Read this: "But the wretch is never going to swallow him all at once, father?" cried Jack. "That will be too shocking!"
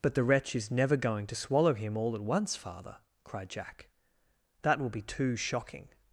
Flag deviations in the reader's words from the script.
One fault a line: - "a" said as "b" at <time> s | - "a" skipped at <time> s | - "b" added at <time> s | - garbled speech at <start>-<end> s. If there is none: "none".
none